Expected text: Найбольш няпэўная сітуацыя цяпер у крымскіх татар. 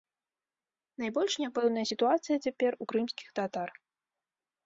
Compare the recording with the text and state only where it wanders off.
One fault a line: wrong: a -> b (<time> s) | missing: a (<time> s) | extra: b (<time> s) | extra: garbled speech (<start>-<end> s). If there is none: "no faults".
no faults